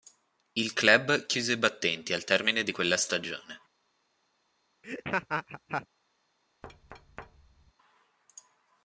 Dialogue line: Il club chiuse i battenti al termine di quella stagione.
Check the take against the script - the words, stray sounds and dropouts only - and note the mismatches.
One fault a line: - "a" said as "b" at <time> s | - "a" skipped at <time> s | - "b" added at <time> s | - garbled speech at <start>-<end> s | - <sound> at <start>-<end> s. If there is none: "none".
- laugh at 4.8-5.9 s
- thud at 6.6-7.7 s